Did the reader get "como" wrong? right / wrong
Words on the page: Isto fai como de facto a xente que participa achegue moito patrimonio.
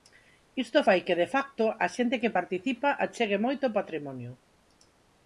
wrong